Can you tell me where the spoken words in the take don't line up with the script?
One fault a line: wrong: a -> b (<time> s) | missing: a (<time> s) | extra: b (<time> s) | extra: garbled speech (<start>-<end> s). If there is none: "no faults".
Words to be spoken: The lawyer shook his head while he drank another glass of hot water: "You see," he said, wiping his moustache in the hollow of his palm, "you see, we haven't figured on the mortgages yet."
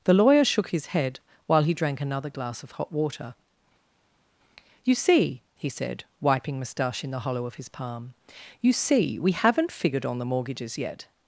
missing: his (6.6 s)